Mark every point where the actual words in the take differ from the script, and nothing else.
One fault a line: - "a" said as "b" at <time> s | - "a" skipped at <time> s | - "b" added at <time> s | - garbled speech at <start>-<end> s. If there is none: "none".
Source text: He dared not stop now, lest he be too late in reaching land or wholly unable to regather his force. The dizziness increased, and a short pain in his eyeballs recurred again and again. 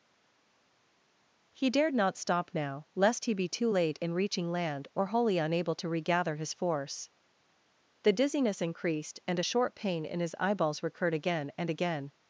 none